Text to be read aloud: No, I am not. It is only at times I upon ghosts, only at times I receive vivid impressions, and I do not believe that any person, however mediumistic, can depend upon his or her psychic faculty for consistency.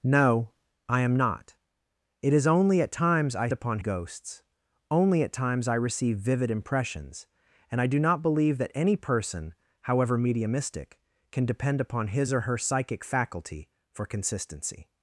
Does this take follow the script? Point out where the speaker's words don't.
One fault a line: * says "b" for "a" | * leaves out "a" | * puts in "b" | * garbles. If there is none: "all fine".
all fine